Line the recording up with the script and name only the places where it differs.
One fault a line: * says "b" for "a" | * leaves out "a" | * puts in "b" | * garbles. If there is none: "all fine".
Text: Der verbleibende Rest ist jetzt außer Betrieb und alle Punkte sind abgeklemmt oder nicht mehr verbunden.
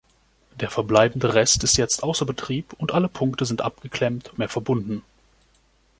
* leaves out "oder nicht"